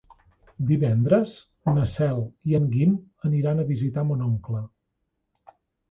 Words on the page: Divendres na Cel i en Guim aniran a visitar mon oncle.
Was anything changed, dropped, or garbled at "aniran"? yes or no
no